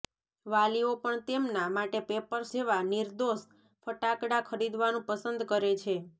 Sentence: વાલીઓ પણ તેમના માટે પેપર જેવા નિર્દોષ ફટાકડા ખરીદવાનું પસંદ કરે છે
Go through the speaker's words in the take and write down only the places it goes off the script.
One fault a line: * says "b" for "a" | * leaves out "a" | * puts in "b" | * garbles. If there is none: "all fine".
all fine